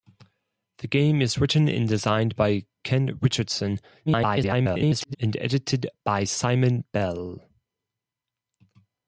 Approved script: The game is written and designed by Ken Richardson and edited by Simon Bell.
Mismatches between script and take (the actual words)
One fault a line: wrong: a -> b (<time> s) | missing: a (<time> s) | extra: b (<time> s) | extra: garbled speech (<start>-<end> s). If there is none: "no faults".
extra: garbled speech (4.1-5.2 s)